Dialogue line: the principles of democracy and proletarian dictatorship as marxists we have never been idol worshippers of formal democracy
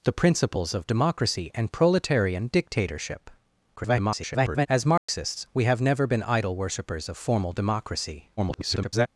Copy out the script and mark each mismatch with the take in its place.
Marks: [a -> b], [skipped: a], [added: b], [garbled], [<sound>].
the principles of democracy and proletarian dictatorship [garbled] as marxists [dropout] we have never been idol worshippers of formal democracy [garbled]